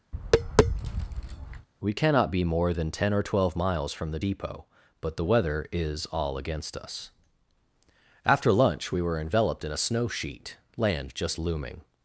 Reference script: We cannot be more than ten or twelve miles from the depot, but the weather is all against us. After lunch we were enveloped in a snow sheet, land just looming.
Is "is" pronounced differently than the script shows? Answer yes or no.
no